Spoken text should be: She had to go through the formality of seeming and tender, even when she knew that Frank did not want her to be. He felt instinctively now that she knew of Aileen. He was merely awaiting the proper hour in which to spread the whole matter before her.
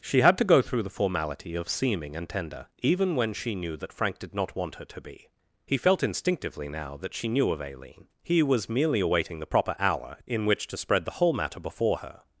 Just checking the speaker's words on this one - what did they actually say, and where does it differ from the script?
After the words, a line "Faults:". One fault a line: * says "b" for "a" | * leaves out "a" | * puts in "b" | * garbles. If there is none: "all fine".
She had to go through the formality of seeming and tender, even when she knew that Frank did not want her to be. He felt instinctively now that she knew of Aileen. He was merely awaiting the proper hour in which to spread the whole matter before her.
Faults:
all fine